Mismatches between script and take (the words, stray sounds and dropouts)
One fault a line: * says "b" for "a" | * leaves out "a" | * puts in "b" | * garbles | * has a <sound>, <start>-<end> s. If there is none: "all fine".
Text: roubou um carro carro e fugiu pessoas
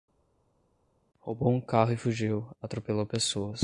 * leaves out "carro"
* puts in "atropelou"